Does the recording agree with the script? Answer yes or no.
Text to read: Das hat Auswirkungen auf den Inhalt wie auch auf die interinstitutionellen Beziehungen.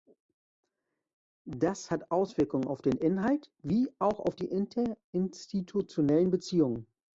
yes